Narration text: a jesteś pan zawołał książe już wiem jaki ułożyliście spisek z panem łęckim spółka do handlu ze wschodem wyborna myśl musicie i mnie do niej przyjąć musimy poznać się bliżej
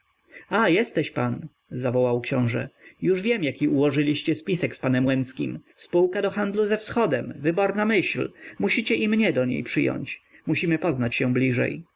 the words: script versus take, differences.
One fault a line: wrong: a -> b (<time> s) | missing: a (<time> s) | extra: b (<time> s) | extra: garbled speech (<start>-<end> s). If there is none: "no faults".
no faults